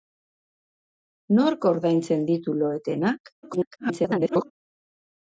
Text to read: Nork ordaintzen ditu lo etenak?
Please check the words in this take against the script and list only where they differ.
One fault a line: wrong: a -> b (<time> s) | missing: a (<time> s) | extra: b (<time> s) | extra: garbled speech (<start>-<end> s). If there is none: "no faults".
extra: garbled speech (3.4-4.5 s)